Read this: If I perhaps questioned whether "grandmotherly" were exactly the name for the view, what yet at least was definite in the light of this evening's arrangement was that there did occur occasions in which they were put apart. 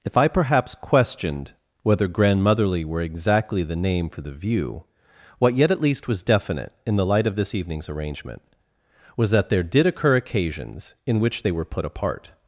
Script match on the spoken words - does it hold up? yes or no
yes